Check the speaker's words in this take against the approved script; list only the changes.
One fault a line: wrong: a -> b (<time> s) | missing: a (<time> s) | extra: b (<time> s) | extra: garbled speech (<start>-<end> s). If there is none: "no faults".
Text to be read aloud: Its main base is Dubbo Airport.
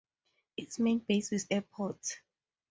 missing: Dubbo (1.4 s)